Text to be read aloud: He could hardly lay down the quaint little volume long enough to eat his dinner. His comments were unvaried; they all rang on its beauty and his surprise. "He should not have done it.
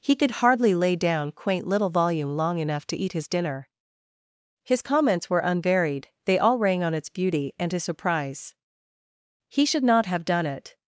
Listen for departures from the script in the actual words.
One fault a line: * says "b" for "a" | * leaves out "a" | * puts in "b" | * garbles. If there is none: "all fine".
* leaves out "the"